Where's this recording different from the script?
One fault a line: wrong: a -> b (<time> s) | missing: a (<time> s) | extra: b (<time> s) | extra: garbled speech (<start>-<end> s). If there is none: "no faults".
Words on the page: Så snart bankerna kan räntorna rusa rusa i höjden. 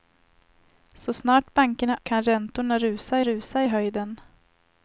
no faults